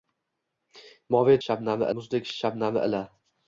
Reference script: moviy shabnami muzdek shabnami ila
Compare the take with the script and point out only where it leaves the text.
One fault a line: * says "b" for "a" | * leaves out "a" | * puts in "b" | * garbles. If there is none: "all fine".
all fine